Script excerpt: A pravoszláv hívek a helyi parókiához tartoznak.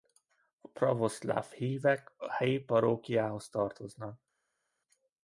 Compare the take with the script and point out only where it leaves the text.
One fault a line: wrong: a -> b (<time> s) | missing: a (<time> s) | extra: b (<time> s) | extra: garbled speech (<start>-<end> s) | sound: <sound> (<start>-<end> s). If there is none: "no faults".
no faults